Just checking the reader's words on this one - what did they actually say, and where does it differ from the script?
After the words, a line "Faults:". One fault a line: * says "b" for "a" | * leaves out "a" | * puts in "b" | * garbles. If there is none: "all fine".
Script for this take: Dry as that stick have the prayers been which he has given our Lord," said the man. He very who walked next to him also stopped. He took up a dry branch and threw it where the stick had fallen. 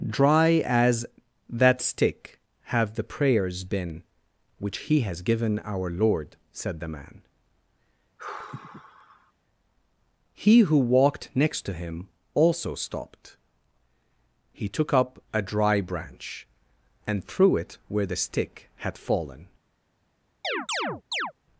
Dry as that stick have the prayers been which he has given our Lord," said the man. He who walked next to him also stopped. He took up a dry branch and threw it where the stick had fallen.
Faults:
* leaves out "very"